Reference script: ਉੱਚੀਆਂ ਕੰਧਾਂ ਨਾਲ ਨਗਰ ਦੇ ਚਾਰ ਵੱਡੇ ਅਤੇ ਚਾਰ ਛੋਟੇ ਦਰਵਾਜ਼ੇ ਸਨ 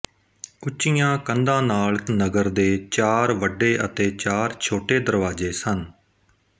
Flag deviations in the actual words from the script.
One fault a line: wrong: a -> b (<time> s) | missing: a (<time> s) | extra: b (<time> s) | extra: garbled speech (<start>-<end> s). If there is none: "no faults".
no faults